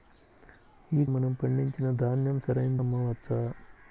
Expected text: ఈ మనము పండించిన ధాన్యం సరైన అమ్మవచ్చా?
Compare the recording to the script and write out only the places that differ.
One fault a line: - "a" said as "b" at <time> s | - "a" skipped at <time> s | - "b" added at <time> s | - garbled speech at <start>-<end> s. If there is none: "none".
none